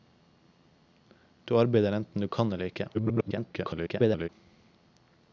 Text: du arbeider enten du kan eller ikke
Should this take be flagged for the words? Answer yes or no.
yes